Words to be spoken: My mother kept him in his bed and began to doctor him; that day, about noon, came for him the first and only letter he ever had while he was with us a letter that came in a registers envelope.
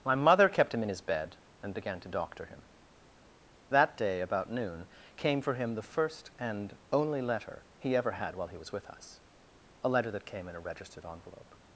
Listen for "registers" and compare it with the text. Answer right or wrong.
wrong